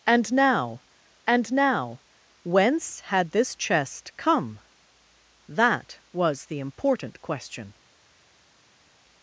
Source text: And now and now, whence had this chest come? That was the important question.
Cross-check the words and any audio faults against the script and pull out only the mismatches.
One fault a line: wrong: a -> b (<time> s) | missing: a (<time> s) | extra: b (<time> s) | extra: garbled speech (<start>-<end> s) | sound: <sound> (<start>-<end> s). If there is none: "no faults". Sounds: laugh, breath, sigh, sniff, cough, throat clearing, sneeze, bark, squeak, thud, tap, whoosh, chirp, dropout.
no faults